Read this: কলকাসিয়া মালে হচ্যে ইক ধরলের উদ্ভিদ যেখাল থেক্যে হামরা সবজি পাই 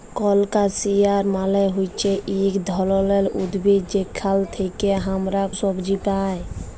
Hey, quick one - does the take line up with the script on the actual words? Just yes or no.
yes